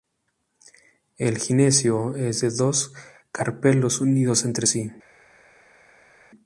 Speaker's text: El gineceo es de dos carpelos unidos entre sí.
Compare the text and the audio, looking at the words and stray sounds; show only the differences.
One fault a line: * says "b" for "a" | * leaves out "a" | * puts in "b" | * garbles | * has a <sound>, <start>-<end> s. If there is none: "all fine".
all fine